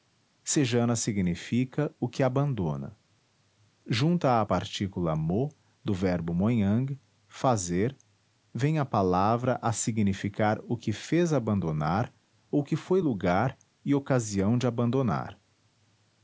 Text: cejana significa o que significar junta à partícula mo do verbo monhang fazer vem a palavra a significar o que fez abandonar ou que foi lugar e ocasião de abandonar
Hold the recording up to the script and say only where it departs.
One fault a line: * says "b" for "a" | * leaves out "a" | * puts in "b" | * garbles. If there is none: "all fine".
* says "abandona" for "significar"